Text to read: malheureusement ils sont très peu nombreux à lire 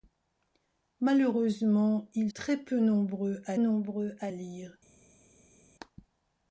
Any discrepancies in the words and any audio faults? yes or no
yes